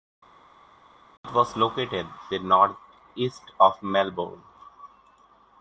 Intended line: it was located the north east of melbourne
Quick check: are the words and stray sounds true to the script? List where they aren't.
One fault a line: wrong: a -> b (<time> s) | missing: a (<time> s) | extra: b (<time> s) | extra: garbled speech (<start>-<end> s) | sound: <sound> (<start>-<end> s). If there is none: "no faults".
no faults